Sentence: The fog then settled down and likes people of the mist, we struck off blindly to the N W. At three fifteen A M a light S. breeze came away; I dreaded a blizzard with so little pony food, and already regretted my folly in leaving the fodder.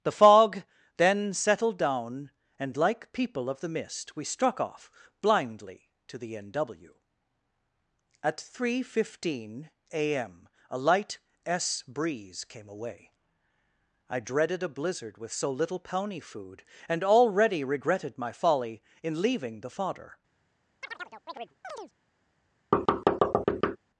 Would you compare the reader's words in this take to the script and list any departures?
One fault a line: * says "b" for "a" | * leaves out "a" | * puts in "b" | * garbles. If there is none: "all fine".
* says "like" for "likes"